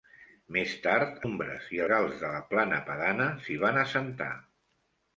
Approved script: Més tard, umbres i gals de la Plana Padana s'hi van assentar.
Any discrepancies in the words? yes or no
no